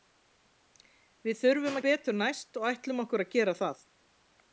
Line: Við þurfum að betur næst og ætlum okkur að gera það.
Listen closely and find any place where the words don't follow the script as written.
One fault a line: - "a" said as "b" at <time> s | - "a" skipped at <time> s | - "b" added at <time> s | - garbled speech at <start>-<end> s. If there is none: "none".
none